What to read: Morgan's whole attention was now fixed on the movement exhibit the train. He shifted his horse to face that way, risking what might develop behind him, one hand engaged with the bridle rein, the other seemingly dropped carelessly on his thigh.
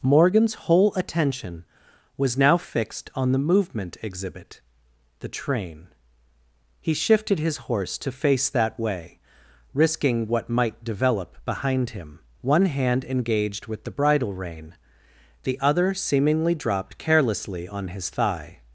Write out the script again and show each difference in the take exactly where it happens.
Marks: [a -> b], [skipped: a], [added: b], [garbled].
Morgan's whole attention was now fixed on the movement exhibit the train. He shifted his horse to face that way, risking what might develop behind him, one hand engaged with the bridle rein, the other seemingly dropped carelessly on his thigh.